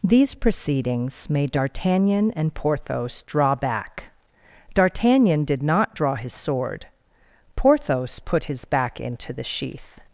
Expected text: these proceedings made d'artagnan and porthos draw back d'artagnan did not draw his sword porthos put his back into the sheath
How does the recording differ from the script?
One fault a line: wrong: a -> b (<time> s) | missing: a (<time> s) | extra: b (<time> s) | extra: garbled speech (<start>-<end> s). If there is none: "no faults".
no faults